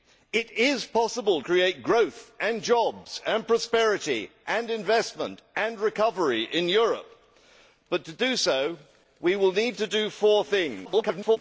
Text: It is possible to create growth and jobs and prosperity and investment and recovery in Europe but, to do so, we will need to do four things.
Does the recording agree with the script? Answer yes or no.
no